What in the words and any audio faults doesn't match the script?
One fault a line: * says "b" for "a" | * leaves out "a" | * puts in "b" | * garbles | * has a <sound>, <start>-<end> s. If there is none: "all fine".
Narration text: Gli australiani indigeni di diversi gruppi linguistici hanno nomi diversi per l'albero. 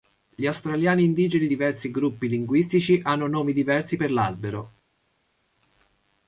* leaves out "di"